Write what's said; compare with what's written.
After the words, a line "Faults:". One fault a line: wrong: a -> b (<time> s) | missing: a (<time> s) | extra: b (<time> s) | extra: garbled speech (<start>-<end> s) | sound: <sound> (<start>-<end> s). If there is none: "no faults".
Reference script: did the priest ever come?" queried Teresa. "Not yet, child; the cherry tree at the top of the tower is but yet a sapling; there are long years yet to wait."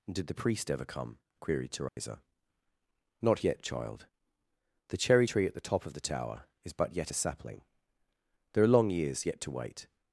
did the priest ever come?" queried Teresa. "Not yet, child; the cherry tree at the top of the tower is but yet a sapling; there are long years yet to wait."
Faults:
sound: dropout (1.9-2.0 s)